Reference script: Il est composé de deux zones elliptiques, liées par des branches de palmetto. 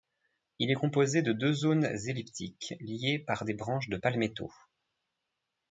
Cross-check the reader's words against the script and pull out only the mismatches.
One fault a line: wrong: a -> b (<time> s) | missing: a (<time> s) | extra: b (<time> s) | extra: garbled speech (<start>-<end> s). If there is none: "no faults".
no faults